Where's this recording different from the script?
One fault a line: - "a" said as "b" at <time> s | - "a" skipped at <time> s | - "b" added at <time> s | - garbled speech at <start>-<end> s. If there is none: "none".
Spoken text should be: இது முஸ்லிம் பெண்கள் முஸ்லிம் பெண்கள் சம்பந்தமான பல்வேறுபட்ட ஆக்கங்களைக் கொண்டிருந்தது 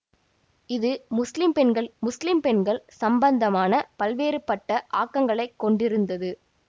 none